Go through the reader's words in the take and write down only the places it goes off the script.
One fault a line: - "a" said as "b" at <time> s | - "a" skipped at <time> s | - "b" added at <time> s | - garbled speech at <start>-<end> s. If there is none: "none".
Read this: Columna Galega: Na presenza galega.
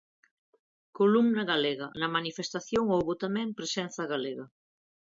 - "manifestación houbo tamén" added at 2.2 s